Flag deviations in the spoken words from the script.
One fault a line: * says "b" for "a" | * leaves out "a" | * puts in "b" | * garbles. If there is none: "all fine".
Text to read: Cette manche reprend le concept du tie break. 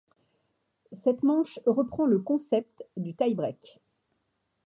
all fine